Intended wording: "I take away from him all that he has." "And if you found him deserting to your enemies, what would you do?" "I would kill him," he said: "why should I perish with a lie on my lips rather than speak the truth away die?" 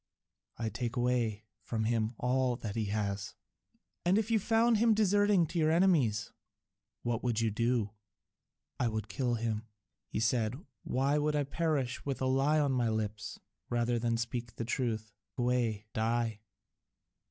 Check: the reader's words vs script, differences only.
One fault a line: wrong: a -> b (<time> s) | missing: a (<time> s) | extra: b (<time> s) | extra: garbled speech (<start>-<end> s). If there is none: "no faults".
no faults